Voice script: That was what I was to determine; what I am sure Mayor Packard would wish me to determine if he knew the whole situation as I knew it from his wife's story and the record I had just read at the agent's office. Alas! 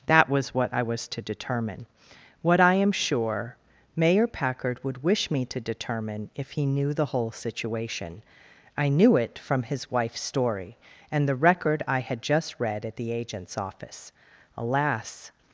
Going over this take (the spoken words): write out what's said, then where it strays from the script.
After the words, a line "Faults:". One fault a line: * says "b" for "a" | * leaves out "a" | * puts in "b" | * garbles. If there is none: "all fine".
That was what I was to determine; what I am sure Mayor Packard would wish me to determine if he knew the whole situation I knew it from his wife's story and the record I had just read at the agent's office. Alas!
Faults:
* leaves out "as"